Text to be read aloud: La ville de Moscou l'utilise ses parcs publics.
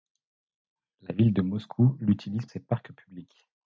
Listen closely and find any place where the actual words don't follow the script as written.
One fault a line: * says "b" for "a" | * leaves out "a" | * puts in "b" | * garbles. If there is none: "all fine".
all fine